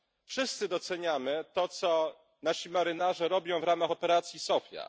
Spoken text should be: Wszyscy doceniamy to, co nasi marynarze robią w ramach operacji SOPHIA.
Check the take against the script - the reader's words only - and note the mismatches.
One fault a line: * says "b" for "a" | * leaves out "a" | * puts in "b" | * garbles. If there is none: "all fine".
all fine